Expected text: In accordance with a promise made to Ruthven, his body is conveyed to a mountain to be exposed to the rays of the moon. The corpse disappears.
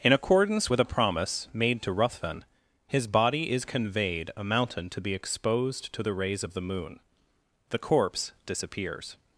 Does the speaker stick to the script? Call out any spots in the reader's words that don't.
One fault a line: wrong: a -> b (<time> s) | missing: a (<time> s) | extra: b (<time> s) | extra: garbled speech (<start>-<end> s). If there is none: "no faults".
missing: to (4.3 s)